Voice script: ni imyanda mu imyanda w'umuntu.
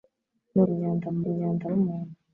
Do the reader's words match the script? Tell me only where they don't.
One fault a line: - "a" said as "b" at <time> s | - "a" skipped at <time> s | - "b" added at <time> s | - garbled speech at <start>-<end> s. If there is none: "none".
none